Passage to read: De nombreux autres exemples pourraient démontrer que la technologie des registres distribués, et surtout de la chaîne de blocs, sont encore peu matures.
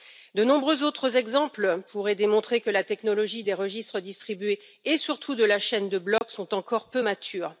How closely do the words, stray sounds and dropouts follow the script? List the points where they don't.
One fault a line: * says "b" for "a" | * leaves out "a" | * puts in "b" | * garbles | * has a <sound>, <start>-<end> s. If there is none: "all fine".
* has a dropout, 6.2-6.2 s